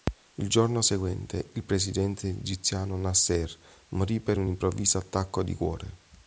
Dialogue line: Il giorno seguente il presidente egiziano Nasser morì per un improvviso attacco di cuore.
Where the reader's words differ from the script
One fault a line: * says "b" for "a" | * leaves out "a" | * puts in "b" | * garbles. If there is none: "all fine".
all fine